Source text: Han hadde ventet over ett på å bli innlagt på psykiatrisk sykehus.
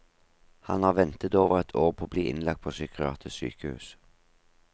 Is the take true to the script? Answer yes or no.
no